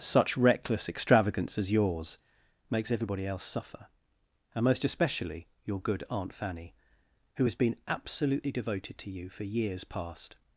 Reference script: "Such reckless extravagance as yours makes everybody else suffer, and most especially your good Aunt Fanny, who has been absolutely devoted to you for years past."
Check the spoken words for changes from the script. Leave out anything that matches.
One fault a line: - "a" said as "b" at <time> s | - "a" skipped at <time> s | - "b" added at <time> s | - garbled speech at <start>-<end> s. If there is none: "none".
none